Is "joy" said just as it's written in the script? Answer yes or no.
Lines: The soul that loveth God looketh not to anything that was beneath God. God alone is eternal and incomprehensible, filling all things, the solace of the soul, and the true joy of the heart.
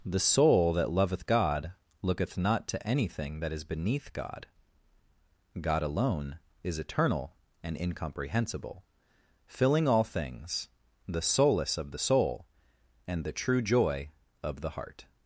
yes